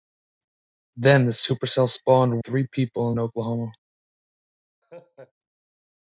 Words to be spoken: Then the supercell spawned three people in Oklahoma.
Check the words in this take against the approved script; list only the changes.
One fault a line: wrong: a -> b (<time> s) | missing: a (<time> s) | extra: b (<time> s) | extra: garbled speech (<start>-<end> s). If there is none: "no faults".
no faults